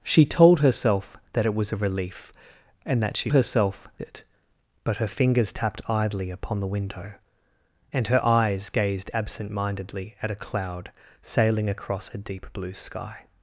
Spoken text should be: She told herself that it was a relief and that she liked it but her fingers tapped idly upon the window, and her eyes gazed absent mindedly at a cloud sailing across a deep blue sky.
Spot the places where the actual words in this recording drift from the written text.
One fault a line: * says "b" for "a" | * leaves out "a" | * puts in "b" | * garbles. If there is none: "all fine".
* says "herself" for "liked"